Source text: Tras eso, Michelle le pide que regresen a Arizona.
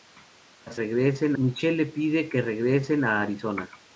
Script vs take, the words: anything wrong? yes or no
yes